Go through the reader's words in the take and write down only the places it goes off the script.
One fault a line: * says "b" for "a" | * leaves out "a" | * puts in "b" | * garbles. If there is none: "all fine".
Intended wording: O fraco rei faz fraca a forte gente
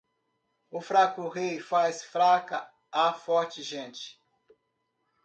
all fine